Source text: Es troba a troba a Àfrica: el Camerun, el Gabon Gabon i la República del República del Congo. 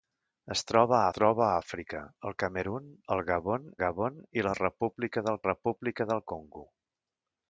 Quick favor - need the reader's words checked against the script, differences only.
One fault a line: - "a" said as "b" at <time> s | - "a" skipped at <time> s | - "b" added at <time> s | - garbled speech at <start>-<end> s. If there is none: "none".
none